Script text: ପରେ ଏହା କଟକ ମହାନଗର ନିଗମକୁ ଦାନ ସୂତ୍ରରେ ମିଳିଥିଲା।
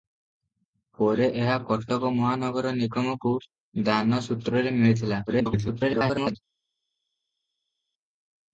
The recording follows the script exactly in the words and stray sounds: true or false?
false